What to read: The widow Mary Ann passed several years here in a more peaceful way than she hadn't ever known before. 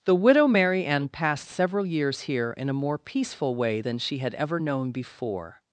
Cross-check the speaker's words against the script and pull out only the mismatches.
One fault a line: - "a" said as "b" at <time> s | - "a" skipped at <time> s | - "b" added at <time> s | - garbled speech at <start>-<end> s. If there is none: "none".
- "hadn't" said as "had" at 4.2 s